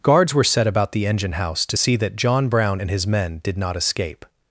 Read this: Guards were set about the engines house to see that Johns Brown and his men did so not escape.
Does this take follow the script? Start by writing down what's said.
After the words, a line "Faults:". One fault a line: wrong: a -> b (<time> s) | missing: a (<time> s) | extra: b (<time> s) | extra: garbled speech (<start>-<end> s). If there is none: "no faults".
Guards were set about the engine house to see that John Brown and his men did not escape.
Faults:
wrong: engines -> engine (1.1 s)
wrong: Johns -> John (2.2 s)
missing: so (3.6 s)